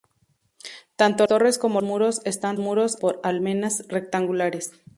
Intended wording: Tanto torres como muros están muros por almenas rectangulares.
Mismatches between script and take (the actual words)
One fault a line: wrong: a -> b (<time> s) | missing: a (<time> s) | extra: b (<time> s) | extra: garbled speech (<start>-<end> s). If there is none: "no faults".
no faults